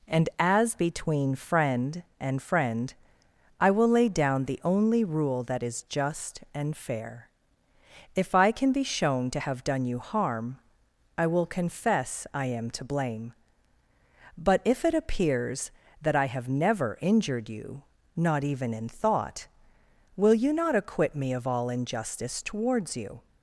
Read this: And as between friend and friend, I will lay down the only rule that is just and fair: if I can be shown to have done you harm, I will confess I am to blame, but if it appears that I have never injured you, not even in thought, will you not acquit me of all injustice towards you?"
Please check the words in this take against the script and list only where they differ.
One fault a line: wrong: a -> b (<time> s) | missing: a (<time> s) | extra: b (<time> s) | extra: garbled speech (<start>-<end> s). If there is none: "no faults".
no faults